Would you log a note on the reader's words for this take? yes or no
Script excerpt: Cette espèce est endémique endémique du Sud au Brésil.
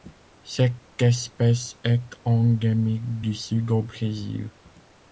yes